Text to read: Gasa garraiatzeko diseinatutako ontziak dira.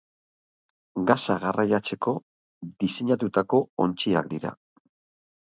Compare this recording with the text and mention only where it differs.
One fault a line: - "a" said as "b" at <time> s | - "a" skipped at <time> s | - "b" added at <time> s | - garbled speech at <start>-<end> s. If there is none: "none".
none